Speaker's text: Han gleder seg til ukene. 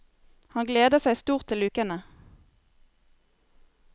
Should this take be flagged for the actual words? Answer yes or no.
yes